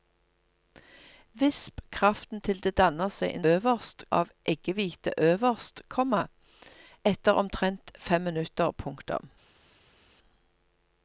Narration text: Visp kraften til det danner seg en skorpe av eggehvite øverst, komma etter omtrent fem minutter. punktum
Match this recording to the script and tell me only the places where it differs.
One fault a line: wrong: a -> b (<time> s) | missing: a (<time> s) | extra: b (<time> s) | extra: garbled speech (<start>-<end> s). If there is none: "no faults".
wrong: skorpe -> øverst (3.5 s)